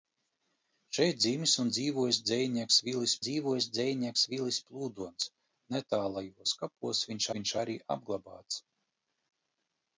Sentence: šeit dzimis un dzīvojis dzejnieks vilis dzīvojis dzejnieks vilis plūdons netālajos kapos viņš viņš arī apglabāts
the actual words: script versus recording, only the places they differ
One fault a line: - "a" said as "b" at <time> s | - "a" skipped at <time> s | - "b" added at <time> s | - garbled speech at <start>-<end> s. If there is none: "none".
none